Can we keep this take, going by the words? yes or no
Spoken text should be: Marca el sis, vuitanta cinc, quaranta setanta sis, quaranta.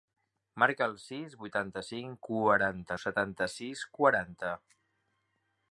yes